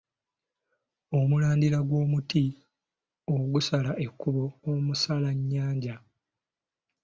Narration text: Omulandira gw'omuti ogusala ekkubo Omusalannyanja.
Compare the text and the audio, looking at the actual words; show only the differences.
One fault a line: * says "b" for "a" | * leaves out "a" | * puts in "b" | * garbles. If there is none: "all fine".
all fine